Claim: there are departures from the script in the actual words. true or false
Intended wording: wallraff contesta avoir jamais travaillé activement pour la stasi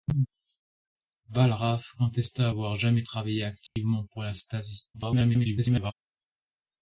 true